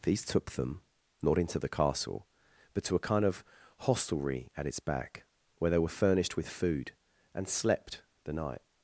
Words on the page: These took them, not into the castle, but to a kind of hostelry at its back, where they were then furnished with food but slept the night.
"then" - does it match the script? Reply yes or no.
no